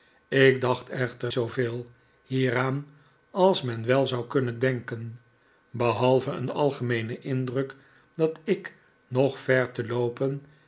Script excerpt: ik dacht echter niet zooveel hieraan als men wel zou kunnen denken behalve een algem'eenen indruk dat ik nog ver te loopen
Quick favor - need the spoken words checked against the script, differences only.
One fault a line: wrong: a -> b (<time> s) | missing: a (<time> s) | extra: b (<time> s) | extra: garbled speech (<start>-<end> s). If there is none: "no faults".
missing: niet (1.3 s)